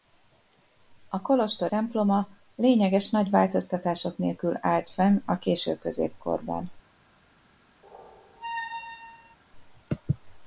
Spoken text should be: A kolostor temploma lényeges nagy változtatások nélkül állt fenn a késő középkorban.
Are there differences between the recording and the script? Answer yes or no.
no